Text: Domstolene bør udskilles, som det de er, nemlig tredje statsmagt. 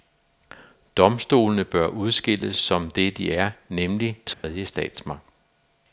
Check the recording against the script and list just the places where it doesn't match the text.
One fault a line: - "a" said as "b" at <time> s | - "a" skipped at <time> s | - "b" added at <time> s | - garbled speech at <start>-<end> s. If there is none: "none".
none